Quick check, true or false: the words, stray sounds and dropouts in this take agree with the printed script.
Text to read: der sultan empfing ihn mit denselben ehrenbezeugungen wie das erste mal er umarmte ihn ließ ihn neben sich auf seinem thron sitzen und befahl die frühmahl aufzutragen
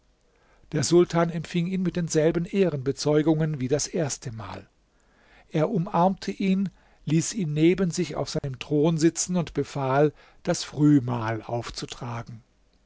false